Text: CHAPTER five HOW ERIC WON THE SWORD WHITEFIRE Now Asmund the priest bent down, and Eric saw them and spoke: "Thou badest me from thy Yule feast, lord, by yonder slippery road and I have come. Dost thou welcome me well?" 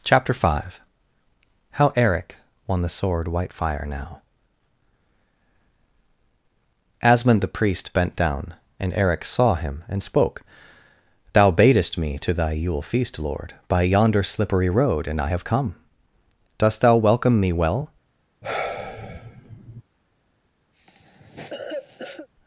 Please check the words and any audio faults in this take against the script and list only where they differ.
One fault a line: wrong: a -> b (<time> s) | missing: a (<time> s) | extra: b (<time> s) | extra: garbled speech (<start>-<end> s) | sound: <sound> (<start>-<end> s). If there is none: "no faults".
wrong: them -> him (9.5 s)
wrong: from -> to (12.2 s)
sound: sigh (18.4-19.8 s)
sound: cough (20.7-22.3 s)